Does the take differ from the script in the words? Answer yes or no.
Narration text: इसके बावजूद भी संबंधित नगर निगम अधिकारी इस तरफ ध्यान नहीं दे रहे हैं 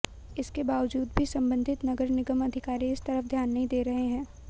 no